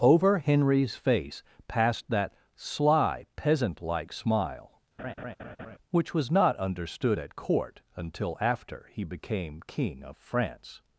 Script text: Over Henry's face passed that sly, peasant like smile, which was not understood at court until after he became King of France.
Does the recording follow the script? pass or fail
pass